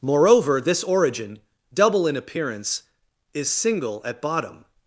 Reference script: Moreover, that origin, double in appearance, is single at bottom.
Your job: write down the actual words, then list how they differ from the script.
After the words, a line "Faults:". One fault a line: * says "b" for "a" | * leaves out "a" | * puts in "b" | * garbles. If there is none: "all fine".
Moreover, this origin, double in appearance, is single at bottom.
Faults:
* says "this" for "that"